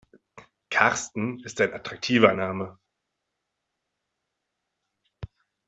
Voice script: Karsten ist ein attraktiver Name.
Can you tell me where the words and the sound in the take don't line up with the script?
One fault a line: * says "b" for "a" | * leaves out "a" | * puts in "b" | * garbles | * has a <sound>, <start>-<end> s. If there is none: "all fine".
all fine